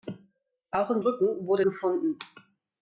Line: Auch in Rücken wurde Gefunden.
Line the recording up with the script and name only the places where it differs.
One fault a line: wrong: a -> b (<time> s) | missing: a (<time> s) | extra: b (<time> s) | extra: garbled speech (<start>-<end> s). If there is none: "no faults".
no faults